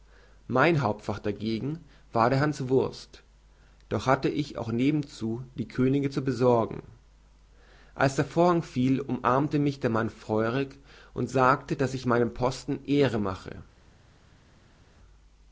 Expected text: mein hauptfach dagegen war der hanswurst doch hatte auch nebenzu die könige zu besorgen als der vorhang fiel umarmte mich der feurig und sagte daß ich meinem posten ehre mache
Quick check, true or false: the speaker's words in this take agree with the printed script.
false